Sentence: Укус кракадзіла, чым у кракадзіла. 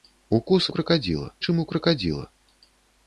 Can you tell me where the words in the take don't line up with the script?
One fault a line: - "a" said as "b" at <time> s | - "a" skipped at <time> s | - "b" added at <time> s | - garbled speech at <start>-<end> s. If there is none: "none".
none